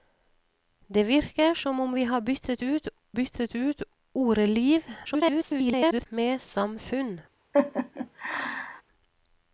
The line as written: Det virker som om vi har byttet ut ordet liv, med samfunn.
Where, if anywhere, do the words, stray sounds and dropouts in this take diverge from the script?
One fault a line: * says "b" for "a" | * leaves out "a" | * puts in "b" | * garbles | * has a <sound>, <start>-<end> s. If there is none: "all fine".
* puts in "byttet ut"
* garbles
* has a laugh, 7.5-8.8 s